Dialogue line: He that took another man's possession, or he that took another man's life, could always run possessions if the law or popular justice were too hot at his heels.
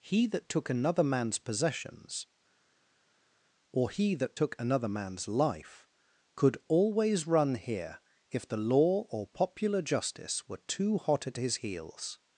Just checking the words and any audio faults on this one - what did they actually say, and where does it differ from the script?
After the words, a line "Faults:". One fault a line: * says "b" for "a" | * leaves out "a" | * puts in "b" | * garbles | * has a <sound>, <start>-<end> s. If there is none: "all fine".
He that took another man's possessions, or he that took another man's life, could always run here if the law or popular justice were too hot at his heels.
Faults:
* says "possessions" for "possession"
* says "here" for "possessions"